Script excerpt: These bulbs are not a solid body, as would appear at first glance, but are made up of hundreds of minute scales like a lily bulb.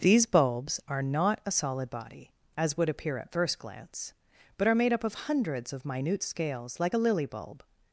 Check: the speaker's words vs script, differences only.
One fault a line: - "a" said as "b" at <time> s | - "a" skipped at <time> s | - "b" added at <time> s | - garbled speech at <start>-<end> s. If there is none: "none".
none